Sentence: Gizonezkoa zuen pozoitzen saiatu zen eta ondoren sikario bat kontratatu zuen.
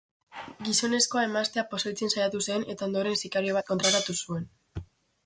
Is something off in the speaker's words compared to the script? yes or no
yes